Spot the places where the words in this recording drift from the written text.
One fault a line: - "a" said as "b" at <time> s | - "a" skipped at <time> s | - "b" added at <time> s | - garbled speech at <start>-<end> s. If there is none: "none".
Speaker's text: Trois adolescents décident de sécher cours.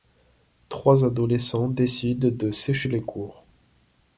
- "les" added at 2.9 s